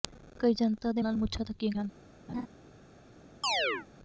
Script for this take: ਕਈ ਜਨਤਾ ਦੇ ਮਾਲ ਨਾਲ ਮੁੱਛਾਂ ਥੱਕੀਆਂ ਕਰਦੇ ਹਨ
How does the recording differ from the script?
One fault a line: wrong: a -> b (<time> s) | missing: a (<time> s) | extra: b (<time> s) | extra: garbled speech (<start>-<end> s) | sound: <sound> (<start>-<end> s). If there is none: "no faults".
missing: ਮਾਲ (1.0 s)
missing: ਕਰਦੇ (1.7 s)
sound: laugh (2.3-2.5 s)
sound: chirp (3.4-3.9 s)